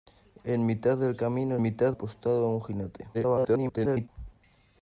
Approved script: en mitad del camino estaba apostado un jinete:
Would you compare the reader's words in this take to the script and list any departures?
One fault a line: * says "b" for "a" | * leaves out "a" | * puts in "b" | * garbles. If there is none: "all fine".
* says "mitad" for "estaba"
* garbles